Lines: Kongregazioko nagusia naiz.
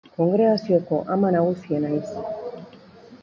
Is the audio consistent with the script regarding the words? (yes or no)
no